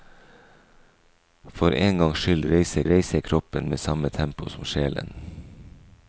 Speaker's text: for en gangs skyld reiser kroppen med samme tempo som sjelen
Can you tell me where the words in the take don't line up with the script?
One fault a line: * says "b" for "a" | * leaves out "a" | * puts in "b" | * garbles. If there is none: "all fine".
* puts in "reiser"